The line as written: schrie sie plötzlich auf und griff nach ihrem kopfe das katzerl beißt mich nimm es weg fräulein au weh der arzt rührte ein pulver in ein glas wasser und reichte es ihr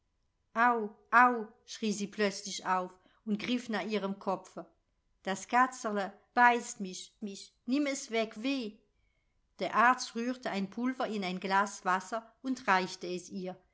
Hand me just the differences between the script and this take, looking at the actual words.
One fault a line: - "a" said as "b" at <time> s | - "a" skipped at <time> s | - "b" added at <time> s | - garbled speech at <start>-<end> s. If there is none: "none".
- "mich" added at 7.2 s
- "fräulein au" skipped at 8.3 s